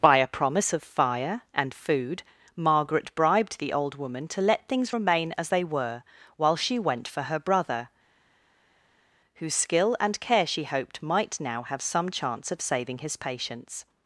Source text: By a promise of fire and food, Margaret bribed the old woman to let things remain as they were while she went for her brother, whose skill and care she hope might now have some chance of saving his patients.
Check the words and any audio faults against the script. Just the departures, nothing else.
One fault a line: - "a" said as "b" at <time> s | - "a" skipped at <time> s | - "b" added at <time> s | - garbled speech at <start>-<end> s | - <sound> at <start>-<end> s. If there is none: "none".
- "hope" said as "hoped" at 10.6 s